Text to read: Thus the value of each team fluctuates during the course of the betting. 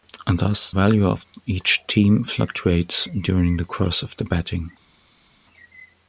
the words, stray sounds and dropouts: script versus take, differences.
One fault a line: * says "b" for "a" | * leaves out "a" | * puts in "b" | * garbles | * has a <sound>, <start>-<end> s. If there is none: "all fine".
* leaves out "the"